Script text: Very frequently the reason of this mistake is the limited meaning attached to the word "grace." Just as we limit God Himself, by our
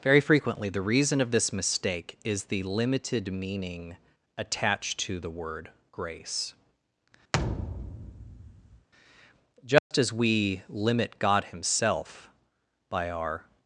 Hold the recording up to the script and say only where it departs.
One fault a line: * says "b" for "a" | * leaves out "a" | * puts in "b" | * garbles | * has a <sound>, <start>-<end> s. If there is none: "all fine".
* has a thud, 7.3-8.9 s
* has a dropout, 9.8-9.9 s